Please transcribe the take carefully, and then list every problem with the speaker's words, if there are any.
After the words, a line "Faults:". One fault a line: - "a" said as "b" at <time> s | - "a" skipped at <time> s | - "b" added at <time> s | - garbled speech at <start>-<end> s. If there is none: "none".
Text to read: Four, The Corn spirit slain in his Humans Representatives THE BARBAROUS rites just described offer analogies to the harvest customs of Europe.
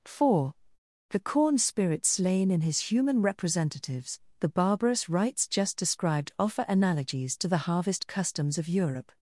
Four, The Corn spirit slain in his Human Representatives THE BARBAROUS rites just described offer analogies to the harvest customs of Europe.
Faults:
- "Humans" said as "Human" at 2.8 s